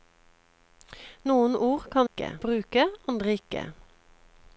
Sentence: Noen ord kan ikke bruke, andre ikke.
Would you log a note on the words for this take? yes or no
no